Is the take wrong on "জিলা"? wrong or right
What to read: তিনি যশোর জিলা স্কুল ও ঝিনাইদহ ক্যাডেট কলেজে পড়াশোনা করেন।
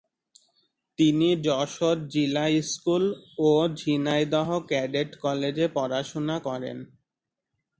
right